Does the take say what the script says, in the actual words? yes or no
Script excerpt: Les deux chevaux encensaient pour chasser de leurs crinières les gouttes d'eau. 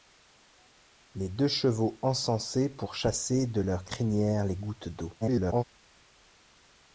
no